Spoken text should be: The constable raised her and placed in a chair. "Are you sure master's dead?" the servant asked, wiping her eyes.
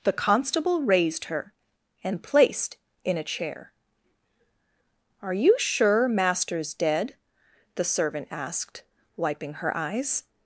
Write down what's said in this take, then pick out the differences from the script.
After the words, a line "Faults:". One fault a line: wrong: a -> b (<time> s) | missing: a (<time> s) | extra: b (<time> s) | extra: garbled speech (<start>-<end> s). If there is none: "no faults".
The constable raised her and placed in a chair. "Are you sure master's dead?" the servant asked, wiping her eyes.
Faults:
no faults